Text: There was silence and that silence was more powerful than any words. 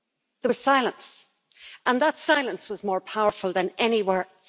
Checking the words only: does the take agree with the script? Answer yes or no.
yes